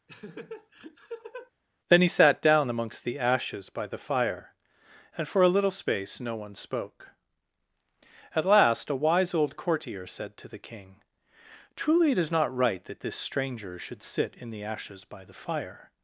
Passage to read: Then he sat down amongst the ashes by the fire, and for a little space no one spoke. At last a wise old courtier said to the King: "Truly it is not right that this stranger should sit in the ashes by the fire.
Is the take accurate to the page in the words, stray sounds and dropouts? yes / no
no